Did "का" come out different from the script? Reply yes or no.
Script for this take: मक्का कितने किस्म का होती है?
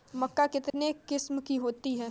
yes